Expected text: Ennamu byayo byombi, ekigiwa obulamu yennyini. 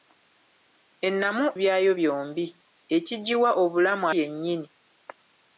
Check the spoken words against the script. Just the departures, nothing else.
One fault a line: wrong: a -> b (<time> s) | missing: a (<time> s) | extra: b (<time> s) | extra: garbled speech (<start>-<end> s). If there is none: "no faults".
no faults